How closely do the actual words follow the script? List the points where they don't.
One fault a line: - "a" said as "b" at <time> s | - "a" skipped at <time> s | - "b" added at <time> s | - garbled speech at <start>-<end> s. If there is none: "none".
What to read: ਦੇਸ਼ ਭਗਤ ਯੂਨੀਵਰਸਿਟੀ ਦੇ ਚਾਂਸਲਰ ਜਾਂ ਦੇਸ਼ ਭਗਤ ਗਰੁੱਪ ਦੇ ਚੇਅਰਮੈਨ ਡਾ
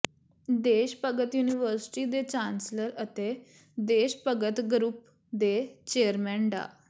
- "ਜਾਂ" said as "ਅਤੇ" at 3.0 s